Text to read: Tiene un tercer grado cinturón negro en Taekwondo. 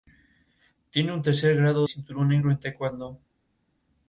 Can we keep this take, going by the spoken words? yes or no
yes